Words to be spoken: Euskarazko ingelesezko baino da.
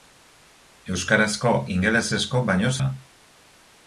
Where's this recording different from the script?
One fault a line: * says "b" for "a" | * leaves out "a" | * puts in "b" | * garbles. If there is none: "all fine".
all fine